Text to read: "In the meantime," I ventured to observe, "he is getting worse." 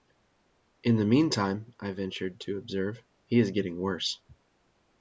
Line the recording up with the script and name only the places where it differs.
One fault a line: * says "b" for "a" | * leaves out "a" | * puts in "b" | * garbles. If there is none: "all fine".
all fine